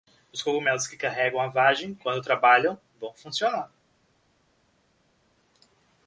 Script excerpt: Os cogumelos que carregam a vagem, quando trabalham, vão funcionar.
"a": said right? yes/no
yes